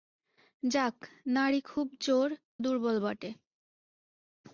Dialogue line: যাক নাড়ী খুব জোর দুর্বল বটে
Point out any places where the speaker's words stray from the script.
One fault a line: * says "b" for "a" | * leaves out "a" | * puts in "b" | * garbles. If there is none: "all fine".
all fine